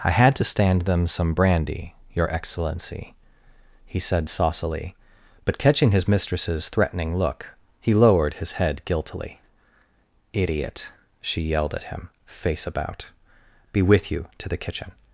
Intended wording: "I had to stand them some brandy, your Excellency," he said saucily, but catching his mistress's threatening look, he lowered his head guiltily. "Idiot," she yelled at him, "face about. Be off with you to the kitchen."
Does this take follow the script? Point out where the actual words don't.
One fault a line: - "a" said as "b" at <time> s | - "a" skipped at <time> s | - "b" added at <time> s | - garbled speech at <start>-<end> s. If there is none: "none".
- "off" skipped at 13.8 s